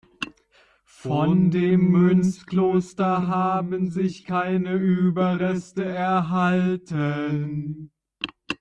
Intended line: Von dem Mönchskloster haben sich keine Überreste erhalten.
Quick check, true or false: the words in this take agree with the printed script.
true